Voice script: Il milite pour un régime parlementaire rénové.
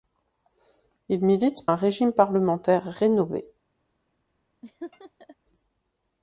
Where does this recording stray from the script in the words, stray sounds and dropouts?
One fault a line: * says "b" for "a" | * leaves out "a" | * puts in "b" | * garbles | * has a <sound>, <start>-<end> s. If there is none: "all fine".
* leaves out "pour"
* has a laugh, 4.6-5.4 s